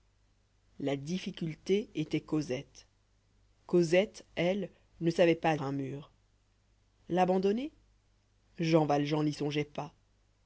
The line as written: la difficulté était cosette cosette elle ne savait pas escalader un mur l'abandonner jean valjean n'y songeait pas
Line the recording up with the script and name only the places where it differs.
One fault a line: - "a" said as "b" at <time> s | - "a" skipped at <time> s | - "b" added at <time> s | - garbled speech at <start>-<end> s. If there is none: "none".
- "escalader" skipped at 5.5 s